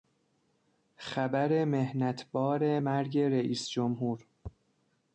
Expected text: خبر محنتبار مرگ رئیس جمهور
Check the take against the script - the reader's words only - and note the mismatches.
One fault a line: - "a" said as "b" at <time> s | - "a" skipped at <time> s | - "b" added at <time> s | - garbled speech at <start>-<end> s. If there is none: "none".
none